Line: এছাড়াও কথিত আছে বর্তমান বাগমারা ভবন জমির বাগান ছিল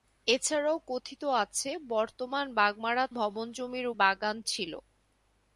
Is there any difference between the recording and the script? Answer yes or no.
no